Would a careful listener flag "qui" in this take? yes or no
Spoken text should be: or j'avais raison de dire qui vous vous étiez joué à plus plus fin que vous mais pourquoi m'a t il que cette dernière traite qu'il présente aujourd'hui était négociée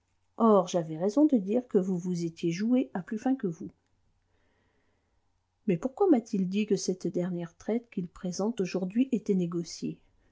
yes